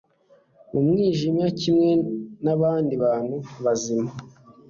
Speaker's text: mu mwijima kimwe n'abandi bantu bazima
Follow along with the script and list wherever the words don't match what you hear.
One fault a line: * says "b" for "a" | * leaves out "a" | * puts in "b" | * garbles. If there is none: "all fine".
all fine